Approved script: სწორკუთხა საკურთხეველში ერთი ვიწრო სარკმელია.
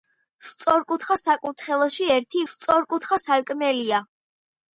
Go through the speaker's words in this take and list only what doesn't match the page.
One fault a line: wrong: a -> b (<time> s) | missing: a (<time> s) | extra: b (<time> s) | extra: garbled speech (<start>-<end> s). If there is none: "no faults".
wrong: ვიწრო -> სწორკუთხა (2.5 s)